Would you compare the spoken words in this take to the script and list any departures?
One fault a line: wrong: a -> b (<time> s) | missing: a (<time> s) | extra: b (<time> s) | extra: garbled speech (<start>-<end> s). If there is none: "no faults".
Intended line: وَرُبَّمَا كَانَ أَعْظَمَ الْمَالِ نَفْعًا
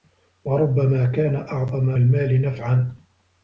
no faults